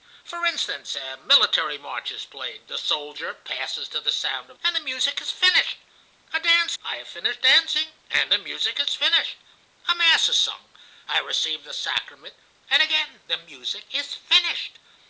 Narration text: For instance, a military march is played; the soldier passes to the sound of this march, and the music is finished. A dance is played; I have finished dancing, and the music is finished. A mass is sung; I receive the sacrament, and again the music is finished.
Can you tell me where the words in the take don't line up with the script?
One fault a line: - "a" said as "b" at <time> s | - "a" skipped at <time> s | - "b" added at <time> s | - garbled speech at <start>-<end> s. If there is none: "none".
- "this march" skipped at 4.6 s
- "is played" skipped at 6.8 s